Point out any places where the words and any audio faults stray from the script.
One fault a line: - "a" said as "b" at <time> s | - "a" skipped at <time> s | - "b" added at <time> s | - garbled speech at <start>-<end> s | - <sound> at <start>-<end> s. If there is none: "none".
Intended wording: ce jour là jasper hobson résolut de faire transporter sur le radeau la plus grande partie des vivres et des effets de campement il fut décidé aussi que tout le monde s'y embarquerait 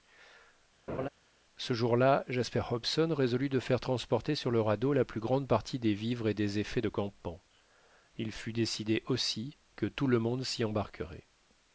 - laugh at 0.9-1.1 s